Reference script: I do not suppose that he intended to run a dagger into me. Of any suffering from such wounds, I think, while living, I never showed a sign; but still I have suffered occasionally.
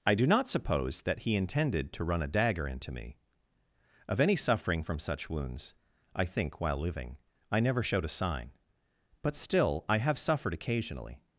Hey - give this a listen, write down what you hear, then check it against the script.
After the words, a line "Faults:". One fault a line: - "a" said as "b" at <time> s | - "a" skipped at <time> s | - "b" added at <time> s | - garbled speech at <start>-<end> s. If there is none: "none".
I do not suppose that he intended to run a dagger into me. Of any suffering from such wounds, I think, while living, I never showed a sign; but still I have suffered occasionally.
Faults:
none